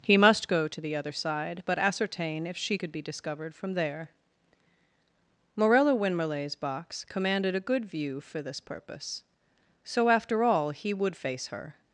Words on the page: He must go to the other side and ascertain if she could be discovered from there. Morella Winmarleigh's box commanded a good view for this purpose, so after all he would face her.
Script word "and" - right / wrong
wrong